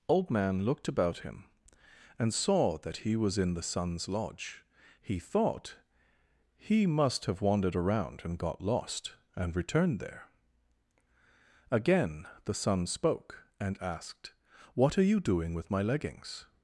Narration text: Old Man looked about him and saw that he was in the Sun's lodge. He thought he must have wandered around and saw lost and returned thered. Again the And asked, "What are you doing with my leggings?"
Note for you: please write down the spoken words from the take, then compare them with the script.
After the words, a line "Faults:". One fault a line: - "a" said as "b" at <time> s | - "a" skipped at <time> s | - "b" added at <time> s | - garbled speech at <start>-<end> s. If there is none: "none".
Old Man looked about him and saw that he was in the Sun's lodge. He thought he must have wandered around and got lost and returned there. Again the Sun spoke, and asked, "What are you doing with my leggings?"
Faults:
- "saw" said as "got" at 8.4 s
- "thered" said as "there" at 10.0 s
- "Sun spoke" added at 12.5 s